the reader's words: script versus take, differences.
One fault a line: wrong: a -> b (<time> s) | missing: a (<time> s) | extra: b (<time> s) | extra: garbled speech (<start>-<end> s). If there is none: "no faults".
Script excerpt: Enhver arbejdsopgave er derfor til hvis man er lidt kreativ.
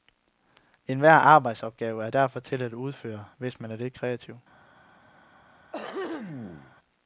extra: at udføre (2.6 s)